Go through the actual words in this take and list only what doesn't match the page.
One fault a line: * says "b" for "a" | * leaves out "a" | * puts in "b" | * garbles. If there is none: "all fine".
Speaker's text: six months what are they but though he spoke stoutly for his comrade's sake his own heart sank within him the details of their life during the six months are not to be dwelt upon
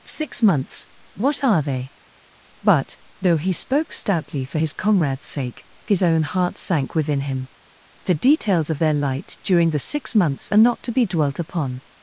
* says "light" for "life"